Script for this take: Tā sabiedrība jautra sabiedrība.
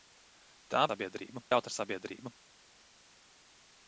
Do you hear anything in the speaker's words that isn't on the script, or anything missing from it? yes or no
no